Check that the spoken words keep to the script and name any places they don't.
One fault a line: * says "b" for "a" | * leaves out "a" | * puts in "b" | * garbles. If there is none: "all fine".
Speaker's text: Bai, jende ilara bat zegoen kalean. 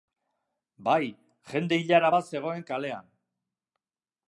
all fine